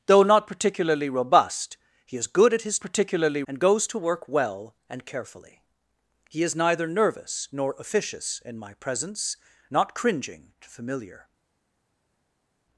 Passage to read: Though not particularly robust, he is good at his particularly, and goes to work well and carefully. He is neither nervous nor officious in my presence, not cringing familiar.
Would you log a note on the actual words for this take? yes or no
no